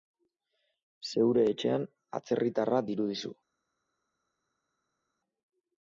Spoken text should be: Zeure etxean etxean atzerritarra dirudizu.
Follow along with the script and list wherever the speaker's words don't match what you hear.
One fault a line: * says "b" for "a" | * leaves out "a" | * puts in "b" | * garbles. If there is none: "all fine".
* leaves out "etxean"